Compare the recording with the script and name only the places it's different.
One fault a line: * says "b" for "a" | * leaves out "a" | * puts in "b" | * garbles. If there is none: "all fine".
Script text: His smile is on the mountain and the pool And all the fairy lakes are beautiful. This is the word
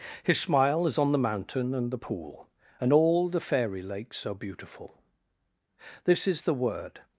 all fine